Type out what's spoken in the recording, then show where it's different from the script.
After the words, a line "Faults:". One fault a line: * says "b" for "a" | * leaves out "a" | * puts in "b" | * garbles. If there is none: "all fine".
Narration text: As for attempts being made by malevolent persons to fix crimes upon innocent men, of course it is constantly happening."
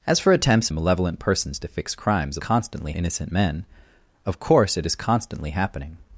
As for attempts malevolent persons to fix crimes constantly innocent men, of course it is constantly happening."
Faults:
* leaves out "being made by"
* says "constantly" for "upon"